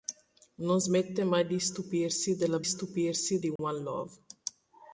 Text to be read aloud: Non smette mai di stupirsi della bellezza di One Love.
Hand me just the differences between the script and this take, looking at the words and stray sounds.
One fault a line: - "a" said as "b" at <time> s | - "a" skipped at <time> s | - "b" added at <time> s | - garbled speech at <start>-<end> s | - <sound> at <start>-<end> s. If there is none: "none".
- "bellezza" said as "stupirsi" at 2.6 s
- dropout at 3.6-3.6 s